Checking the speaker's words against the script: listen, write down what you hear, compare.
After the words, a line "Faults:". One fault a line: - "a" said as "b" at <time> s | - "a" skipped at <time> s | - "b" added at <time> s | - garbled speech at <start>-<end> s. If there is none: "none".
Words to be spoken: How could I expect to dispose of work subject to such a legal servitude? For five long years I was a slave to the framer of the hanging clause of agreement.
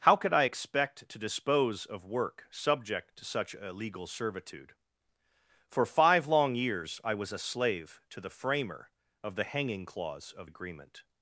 How could I expect to dispose of work subject to such a legal servitude? For five long years I was a slave to the framer of the hanging clause of agreement.
Faults:
none